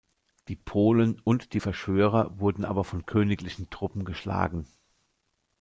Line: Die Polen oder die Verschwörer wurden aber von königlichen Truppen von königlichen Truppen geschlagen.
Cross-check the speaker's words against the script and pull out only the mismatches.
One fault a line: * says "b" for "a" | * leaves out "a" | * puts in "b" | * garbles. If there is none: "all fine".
* says "und" for "oder"
* leaves out "von königlichen Truppen"